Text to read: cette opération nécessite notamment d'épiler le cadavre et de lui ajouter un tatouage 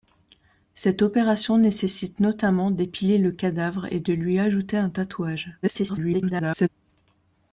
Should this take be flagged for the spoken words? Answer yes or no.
yes